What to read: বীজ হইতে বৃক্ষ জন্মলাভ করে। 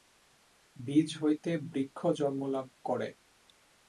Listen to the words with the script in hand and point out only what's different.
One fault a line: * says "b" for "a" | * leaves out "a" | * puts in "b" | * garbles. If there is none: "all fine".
all fine